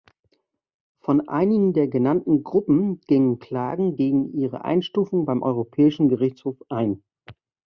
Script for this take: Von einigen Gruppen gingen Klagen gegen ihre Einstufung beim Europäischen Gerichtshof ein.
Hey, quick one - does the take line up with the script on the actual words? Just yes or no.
no